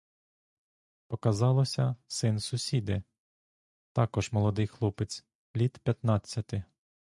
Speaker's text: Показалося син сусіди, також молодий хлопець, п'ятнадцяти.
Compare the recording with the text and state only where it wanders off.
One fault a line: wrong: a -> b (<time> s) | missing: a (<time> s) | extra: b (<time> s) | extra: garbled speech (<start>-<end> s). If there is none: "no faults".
extra: літ (5.6 s)